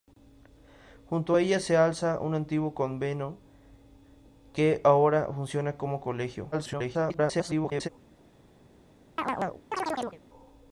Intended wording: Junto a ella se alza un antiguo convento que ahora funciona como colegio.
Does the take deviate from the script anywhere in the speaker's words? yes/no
yes